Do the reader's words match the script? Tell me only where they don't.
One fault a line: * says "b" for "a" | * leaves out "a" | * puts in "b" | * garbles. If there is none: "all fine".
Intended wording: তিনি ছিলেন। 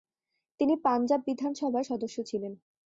* puts in "পাঞ্জাব বিধানসভার সদস্য"